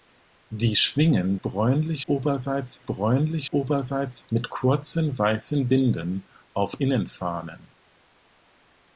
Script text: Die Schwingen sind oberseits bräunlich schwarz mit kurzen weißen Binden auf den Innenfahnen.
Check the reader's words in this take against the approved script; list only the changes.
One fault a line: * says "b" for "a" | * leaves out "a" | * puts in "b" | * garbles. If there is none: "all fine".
* says "bräunlich" for "sind"
* says "oberseits" for "schwarz"
* leaves out "den"